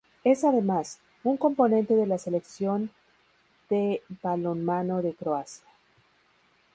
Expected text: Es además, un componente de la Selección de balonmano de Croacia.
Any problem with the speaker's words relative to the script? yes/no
no